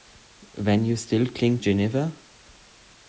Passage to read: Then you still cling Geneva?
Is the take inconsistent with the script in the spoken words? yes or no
no